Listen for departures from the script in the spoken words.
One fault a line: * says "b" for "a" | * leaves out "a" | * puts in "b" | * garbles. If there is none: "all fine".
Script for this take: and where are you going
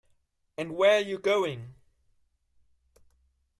all fine